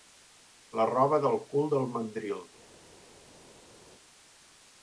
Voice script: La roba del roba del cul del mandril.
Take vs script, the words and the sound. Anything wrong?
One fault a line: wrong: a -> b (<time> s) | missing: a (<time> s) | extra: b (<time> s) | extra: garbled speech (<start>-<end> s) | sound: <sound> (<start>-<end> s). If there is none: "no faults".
missing: roba del (1.4 s)